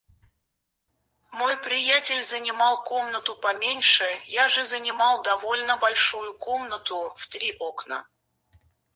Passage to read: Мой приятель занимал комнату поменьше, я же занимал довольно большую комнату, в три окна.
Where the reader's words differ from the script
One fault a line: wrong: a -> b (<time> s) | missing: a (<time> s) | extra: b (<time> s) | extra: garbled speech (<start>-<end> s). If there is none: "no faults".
no faults